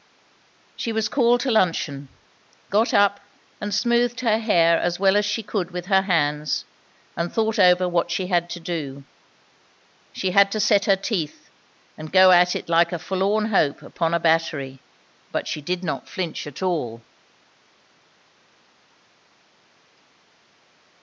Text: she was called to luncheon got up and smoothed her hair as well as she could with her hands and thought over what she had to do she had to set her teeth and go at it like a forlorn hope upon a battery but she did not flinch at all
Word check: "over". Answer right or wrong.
right